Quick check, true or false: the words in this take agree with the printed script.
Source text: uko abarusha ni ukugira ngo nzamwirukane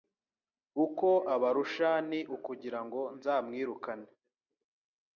true